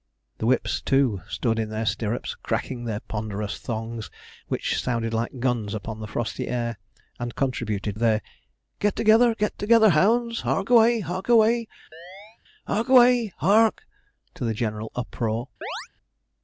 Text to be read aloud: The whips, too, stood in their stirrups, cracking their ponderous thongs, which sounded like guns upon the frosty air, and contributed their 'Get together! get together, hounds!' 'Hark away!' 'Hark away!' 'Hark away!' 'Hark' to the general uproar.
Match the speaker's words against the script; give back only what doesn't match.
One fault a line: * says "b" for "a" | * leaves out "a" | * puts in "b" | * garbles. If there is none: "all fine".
all fine